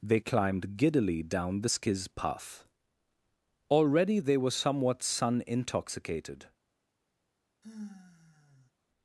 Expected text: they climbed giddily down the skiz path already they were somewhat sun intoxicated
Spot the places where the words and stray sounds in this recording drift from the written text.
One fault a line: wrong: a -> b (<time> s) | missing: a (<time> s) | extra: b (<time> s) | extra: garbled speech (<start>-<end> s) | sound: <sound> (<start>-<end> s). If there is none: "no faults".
sound: sigh (7.6-8.7 s)